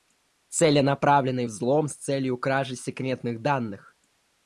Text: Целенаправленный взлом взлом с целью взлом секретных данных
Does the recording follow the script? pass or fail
fail